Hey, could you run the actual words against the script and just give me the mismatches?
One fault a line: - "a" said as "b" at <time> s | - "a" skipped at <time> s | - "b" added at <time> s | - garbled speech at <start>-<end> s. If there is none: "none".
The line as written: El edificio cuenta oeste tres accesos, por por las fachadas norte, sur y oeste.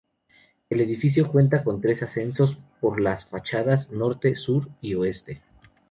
- "oeste" said as "con" at 1.6 s
- "por" skipped at 3.0 s